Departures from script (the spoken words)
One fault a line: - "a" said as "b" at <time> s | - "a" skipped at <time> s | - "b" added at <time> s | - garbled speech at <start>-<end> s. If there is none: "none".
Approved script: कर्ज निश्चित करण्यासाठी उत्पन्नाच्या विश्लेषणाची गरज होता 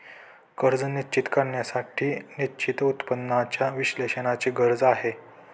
- "निश्चित" added at 2.4 s
- "होता" said as "आहे" at 4.8 s